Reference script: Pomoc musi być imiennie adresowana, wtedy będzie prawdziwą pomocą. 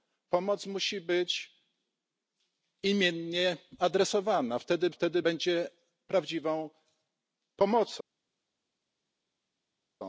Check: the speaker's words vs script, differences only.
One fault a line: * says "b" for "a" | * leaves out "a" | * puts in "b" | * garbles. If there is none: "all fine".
* puts in "wtedy"